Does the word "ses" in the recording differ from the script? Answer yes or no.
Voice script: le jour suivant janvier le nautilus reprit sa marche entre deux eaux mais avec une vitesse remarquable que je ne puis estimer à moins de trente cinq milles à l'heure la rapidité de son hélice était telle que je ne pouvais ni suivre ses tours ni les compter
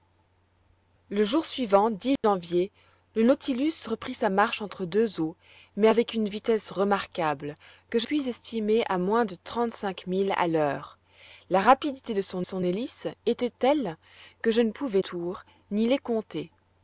yes